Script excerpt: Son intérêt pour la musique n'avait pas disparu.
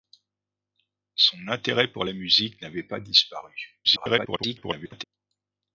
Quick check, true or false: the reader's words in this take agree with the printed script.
false